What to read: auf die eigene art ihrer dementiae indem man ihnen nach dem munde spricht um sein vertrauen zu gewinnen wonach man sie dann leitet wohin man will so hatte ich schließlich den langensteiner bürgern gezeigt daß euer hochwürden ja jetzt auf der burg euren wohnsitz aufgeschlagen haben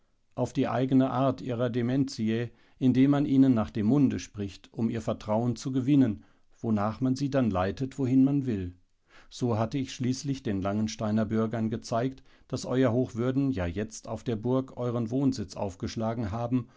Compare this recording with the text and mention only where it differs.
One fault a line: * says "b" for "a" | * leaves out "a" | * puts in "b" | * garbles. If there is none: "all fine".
* says "ihr" for "sein"